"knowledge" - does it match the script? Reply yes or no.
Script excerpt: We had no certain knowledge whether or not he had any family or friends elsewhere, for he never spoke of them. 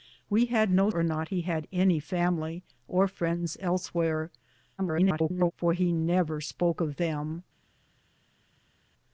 no